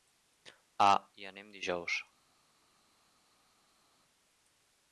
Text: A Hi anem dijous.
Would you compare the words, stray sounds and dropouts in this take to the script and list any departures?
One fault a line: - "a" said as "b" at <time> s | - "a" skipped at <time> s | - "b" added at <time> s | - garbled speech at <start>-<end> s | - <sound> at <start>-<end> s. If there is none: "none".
none